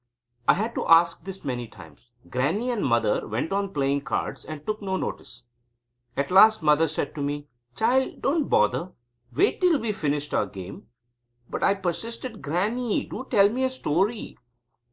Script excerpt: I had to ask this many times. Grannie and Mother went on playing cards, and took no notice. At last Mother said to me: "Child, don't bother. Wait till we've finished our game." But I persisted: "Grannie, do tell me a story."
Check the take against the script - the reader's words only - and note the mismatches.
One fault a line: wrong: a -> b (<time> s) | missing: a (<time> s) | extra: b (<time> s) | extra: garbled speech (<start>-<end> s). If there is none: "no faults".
no faults